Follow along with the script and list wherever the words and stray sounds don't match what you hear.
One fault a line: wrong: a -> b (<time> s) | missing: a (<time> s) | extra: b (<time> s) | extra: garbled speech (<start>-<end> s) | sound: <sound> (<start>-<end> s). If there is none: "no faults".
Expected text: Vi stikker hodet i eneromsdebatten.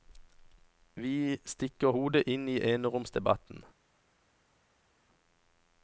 extra: inn (2.3 s)